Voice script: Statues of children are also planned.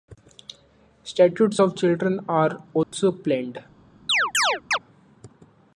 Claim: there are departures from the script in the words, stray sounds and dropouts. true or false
true